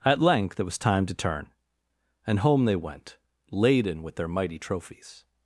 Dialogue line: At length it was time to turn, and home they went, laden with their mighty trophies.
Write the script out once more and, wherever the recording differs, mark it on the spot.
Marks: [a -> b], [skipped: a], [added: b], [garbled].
At length it was time to turn, and home they went, laden with their mighty trophies.